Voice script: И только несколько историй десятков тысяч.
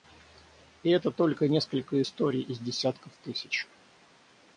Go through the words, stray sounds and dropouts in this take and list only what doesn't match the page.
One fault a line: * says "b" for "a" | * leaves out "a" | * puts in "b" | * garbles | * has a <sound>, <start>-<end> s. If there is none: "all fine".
* puts in "это"
* puts in "из"